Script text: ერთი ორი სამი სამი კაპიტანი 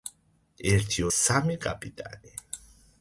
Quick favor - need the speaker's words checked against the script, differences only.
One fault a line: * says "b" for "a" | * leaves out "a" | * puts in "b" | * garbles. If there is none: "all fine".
* leaves out "ორი სამი"